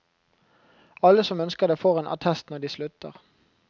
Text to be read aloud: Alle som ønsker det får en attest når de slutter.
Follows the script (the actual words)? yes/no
yes